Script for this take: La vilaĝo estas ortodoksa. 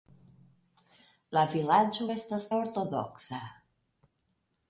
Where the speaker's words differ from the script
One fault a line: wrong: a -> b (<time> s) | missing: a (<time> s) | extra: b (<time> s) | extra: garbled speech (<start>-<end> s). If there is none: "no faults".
no faults